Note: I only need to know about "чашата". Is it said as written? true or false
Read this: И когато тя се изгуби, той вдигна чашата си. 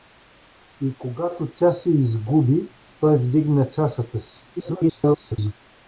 true